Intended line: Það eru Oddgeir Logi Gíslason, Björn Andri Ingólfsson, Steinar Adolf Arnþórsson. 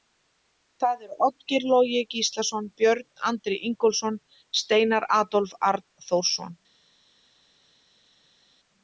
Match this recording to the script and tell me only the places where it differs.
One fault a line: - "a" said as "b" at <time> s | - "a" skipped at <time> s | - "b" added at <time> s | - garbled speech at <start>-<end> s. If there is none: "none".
none